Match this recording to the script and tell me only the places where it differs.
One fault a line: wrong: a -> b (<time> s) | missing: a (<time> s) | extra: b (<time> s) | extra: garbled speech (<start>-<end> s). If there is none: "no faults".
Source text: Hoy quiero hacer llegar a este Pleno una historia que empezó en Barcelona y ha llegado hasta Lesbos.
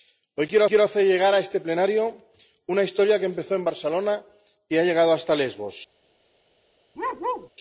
extra: quiero (0.7 s)